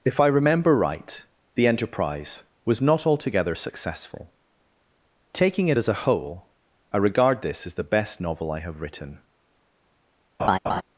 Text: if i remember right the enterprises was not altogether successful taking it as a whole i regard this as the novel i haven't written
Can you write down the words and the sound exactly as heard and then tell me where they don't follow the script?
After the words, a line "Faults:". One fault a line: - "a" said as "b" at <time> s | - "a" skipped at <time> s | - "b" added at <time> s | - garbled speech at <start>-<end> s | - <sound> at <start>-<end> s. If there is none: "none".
if i remember right the enterprise was not altogether successful taking it as a whole i regard this as the best novel i have written
Faults:
- "enterprises" said as "enterprise" at 1.7 s
- "best" added at 7.9 s
- "haven't" said as "have" at 8.6 s
- laugh at 10.4-10.8 s